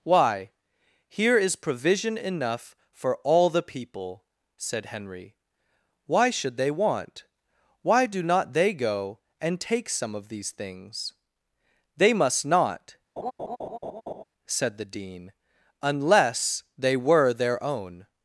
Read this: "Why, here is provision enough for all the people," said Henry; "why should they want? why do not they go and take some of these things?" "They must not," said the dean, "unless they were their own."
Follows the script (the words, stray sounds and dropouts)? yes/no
no